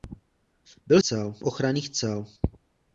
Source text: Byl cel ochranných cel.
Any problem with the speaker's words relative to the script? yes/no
no